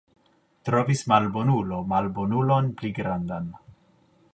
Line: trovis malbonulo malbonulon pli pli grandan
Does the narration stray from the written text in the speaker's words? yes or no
yes